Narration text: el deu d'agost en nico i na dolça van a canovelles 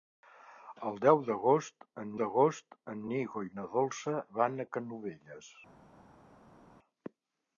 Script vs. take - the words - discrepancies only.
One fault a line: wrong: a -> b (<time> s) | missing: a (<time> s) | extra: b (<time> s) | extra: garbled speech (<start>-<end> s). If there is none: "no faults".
extra: d'agost en (2.2 s)